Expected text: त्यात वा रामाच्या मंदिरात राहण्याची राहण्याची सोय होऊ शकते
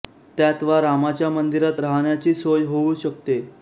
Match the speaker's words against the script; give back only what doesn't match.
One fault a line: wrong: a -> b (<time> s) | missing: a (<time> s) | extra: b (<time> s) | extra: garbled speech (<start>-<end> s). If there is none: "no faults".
missing: राहण्याची (2.3 s)